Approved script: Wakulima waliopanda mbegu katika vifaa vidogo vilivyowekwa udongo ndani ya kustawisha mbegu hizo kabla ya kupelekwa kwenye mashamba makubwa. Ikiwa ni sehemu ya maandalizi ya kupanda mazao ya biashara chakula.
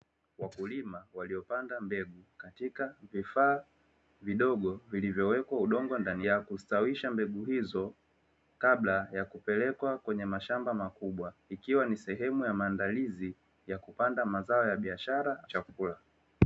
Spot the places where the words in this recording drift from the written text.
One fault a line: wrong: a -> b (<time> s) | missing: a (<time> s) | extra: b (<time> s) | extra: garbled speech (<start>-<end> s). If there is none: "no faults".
no faults